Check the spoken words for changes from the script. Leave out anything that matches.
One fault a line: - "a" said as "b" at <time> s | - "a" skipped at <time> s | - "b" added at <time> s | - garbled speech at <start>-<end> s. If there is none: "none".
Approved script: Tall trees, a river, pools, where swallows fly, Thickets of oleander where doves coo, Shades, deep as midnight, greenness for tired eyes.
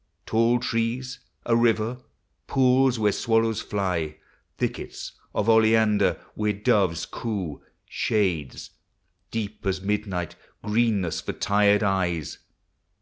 none